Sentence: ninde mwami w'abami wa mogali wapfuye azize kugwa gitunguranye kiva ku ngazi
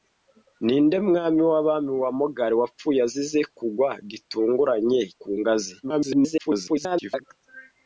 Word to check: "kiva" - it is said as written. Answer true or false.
false